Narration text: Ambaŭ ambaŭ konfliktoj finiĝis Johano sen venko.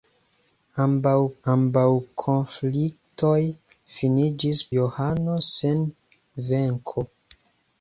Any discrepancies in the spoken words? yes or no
no